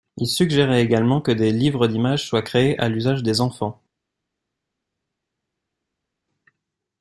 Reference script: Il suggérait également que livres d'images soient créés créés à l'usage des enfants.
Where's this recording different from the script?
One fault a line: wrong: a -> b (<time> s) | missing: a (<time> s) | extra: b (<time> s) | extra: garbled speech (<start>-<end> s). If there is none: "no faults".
extra: des (1.3 s)
missing: créés (2.8 s)